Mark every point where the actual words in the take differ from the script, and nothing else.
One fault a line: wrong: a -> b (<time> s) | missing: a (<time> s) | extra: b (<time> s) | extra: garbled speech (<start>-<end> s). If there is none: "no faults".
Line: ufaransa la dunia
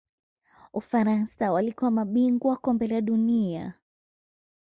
extra: walikuwa mabingwa Kombe (1.5 s)